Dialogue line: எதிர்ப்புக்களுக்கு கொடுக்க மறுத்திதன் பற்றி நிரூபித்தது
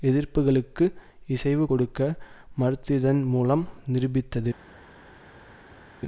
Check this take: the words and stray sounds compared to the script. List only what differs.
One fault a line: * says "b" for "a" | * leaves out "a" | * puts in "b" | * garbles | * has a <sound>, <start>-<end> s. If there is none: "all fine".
* puts in "இசைவு"
* says "மூலம்" for "பற்றி"